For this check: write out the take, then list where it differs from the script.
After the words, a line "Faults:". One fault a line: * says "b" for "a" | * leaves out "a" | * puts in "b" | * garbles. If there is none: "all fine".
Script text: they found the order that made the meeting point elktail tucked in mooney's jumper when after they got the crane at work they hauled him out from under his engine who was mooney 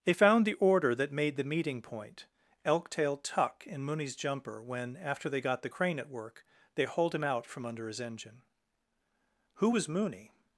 they found the order that made the meeting point elktail tuck in mooney's jumper when after they got the crane at work they hauled him out from under his engine who was mooney
Faults:
* says "tuck" for "tucked"